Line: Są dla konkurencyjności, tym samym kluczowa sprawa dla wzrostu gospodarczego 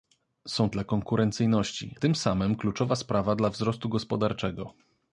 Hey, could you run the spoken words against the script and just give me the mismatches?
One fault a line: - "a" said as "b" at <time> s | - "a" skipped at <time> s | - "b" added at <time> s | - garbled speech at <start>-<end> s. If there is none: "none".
none